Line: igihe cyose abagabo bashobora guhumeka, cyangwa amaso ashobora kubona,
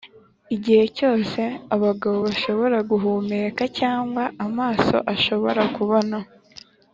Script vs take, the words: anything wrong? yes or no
no